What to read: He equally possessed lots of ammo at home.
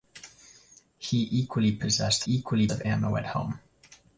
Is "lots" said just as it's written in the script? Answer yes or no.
no